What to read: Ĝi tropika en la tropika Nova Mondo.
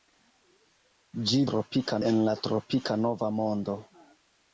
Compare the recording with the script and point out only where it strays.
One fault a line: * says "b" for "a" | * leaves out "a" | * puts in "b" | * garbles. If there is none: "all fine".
all fine